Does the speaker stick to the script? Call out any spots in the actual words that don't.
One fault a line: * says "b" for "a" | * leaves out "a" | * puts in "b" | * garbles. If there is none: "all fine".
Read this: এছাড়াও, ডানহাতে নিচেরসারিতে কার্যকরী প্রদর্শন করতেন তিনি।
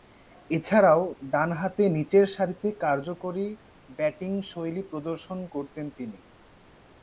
* puts in "ব্যাটিংশৈলী"